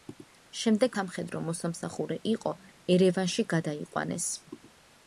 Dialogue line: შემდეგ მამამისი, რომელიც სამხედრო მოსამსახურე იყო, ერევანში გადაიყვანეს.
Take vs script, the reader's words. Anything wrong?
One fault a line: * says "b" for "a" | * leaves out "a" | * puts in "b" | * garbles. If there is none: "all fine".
* leaves out "მამამისი რომელიც"